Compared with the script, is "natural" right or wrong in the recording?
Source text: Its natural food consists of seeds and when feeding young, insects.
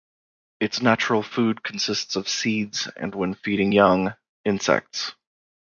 right